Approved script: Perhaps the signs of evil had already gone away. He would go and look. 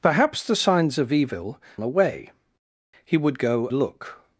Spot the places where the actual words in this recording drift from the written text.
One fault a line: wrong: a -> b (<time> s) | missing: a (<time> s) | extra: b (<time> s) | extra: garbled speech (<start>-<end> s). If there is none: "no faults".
missing: had already gone (1.6 s)
missing: and (3.7 s)